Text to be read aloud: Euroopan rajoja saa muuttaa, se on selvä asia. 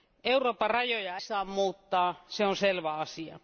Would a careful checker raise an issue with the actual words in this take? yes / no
no